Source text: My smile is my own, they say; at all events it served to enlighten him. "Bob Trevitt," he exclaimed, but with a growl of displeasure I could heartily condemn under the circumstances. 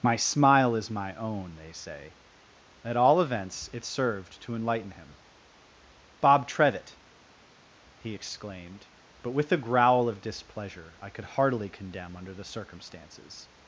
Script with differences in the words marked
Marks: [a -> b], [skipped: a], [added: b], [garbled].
My smile is my own, they say; at all events it served to enlighten him. "Bob Trevitt," he exclaimed, but with a growl of displeasure I could heartily condemn under the circumstances.